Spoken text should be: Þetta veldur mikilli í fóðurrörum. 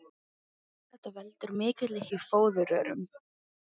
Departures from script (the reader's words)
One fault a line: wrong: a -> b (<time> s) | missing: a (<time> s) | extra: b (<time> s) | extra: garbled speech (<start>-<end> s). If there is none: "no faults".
no faults